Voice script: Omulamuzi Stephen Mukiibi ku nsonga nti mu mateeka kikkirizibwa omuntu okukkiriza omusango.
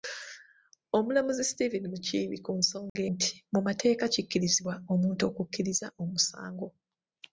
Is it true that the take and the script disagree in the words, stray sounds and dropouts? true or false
true